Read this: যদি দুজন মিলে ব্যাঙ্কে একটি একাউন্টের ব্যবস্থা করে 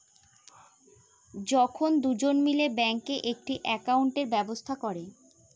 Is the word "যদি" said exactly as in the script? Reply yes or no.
no